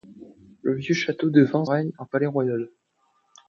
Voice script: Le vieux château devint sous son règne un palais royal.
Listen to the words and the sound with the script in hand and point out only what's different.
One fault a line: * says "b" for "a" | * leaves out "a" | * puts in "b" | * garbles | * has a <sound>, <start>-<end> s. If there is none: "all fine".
* leaves out "sous son"